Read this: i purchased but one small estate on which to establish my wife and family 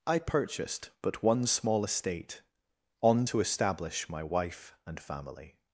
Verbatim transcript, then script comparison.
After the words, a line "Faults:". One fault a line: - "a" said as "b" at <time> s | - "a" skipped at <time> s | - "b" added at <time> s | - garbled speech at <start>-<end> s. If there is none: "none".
i purchased but one small estate on to establish my wife and family
Faults:
- "which" skipped at 3.3 s